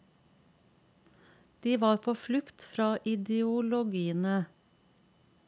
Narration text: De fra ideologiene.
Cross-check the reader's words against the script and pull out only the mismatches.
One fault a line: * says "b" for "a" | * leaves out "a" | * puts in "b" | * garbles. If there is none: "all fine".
* puts in "var på flukt"